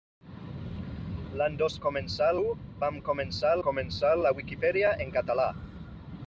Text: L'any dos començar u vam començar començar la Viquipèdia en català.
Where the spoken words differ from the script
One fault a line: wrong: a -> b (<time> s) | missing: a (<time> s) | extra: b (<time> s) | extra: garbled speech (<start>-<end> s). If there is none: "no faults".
no faults